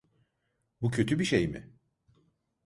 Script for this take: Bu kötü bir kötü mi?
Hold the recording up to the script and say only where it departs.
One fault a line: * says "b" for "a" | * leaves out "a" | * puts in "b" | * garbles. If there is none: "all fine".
* says "şey" for "kötü"